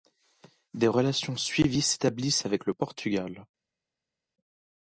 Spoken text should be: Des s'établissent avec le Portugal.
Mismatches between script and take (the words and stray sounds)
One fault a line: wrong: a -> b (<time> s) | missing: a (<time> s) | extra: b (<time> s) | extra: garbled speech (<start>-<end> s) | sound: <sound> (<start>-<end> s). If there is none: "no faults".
extra: relations suivies (0.9 s)